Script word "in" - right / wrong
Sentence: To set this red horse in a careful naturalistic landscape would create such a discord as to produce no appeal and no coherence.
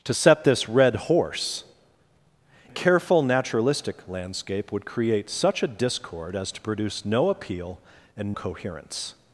wrong